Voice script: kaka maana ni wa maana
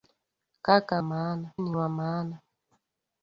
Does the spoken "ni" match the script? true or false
true